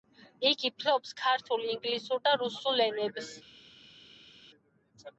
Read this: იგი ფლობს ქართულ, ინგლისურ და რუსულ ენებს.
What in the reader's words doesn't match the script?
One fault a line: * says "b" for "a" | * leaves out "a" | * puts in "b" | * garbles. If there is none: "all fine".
all fine